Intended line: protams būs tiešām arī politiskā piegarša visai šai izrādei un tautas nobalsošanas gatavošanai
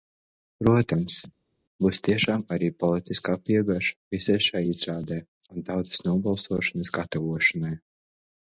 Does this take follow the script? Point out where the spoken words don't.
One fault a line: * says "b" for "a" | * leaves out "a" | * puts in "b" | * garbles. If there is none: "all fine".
all fine